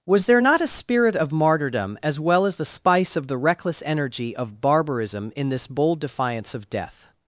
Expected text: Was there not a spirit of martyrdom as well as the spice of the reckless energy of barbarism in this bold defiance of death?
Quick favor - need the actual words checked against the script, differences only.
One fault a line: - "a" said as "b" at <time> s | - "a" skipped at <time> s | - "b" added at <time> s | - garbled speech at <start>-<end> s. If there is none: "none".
none